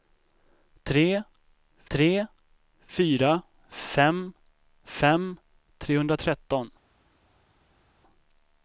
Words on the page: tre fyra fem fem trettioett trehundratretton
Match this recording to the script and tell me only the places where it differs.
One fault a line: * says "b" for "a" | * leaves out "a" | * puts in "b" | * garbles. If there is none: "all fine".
* puts in "tre"
* leaves out "trettioett"